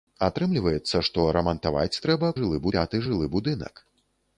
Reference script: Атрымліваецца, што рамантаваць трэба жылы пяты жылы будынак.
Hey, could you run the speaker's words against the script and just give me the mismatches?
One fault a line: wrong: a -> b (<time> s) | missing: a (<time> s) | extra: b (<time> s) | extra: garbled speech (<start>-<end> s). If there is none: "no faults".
no faults